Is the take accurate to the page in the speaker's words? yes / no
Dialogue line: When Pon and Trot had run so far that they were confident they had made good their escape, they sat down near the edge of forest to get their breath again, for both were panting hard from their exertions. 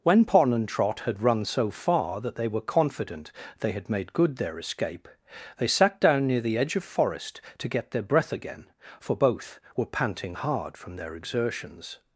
yes